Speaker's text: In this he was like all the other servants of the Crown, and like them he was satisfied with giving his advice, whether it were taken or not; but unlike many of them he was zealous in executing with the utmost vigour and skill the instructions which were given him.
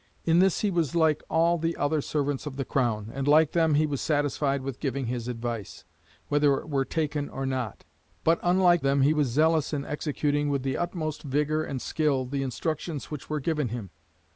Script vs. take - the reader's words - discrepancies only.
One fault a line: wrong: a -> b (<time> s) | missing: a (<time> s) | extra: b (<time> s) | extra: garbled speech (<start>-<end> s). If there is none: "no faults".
missing: many of (8.8 s)